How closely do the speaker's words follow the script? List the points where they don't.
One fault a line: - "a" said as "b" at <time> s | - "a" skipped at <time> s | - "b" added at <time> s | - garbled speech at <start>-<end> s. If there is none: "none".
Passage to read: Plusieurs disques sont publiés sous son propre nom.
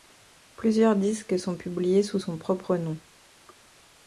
none